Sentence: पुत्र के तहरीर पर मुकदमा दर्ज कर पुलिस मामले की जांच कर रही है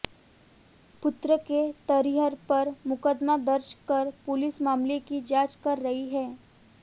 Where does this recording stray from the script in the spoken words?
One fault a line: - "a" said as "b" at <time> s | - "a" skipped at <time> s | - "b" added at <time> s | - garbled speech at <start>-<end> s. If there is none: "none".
none